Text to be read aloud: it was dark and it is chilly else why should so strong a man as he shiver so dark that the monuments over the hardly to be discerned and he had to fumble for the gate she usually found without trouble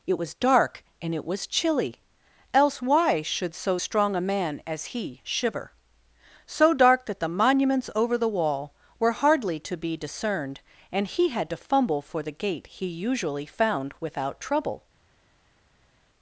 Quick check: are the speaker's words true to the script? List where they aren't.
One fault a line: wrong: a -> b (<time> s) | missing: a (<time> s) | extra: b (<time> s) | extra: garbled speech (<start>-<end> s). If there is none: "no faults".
wrong: is -> was (1.2 s)
extra: wall were (8.3 s)
wrong: she -> he (12.7 s)